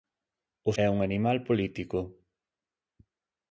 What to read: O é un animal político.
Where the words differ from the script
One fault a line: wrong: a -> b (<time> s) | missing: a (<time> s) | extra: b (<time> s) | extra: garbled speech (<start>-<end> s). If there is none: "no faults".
no faults